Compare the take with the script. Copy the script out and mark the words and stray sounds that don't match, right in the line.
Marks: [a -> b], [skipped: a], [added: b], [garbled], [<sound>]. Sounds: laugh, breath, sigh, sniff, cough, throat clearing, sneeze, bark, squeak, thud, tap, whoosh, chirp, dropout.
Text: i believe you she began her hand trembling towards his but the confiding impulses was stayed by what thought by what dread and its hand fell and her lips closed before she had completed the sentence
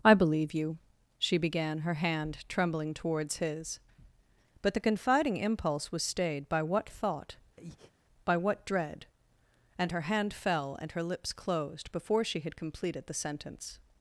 i believe you she began her hand trembling towards his but the confiding [impulses -> impulse] was stayed by what thought [breath] by what dread and [its -> her] hand fell and her lips closed before she had completed the sentence